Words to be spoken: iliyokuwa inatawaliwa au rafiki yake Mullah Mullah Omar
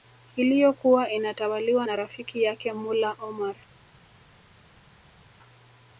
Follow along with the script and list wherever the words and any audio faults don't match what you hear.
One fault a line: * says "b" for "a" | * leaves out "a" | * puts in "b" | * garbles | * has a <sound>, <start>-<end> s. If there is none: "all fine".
* says "na" for "au"
* leaves out "Mullah"